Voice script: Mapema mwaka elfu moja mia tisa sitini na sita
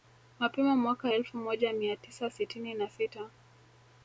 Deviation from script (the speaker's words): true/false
false